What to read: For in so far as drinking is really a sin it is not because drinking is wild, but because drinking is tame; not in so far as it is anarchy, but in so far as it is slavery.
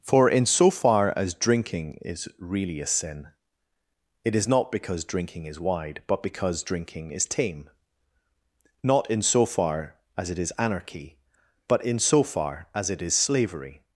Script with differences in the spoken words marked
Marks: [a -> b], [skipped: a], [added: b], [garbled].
For in so far as drinking is really a sin it is not because drinking is [wild, -> wide] but because drinking is tame; not in so far as it is anarchy, but in so far as it is slavery.